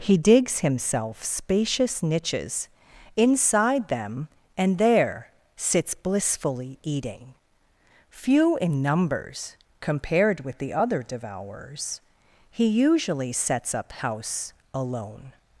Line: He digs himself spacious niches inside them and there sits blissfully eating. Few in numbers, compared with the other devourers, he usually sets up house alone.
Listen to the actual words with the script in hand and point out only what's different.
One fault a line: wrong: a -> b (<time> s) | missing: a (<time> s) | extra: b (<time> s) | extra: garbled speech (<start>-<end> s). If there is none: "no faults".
no faults